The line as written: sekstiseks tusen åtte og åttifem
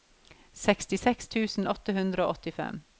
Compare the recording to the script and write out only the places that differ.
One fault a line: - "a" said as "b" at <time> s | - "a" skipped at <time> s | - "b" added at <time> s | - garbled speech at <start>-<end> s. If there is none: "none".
- "hundre" added at 2.0 s